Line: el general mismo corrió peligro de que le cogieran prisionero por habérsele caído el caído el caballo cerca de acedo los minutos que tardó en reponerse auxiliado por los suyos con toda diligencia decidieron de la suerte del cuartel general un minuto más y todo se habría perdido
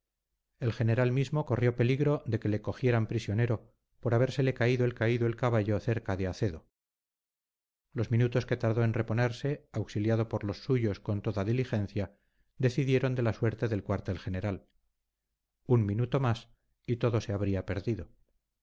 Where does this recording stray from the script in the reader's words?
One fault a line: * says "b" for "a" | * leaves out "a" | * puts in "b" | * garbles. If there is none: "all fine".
all fine